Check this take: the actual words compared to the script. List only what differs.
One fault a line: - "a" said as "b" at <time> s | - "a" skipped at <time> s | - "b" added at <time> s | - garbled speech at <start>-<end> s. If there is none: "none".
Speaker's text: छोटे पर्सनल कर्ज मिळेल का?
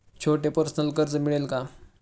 none